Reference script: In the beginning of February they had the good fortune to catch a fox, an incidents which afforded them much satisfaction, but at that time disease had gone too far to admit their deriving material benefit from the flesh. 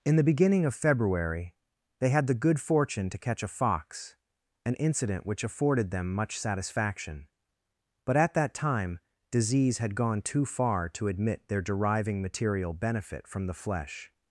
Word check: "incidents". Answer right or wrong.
wrong